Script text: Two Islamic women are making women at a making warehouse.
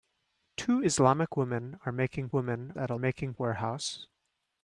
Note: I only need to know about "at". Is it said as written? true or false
true